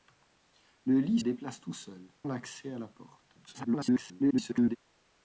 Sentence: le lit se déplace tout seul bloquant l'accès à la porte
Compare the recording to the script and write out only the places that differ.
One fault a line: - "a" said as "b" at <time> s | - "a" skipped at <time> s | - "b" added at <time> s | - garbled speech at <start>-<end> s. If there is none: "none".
- "se" skipped at 1.2 s
- "bloquant" skipped at 2.1 s
- garbled speech at 3.5-4.8 s